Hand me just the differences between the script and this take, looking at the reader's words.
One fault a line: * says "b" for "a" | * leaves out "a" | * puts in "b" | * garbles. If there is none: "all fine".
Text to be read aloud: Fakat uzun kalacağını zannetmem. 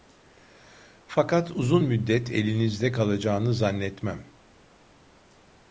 * puts in "müddet elinizde"